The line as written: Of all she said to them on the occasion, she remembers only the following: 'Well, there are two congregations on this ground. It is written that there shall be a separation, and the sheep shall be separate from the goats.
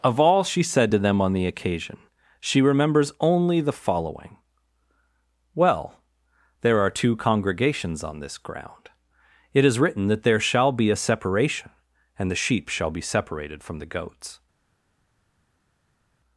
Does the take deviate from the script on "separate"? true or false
true